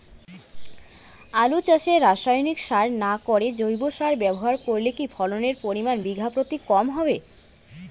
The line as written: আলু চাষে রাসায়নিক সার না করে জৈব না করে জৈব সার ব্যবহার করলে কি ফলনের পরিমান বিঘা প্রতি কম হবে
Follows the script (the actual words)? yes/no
no